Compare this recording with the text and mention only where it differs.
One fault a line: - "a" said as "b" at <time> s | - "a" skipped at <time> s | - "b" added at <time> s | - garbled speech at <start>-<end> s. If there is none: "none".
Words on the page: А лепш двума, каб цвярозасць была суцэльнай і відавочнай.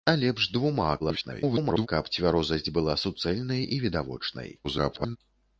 - garbled speech at 1.0-1.9 s
- garbled speech at 4.6-5.2 s